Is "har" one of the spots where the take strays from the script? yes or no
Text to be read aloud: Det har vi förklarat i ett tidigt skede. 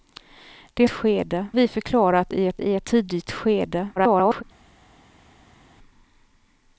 yes